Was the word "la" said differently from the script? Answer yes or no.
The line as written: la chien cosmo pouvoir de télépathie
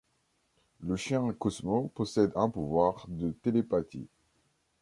yes